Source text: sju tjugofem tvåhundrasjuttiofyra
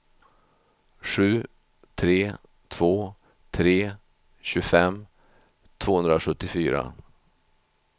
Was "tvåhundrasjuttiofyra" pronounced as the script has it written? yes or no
yes